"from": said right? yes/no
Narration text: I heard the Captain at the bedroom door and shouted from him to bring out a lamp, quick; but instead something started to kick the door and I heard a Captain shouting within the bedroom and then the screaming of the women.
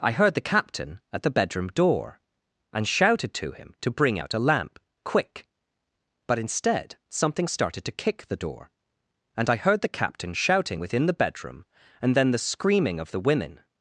no